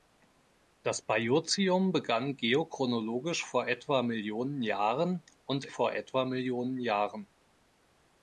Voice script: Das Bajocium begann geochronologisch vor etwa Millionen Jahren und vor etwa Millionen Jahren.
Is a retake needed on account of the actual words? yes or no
no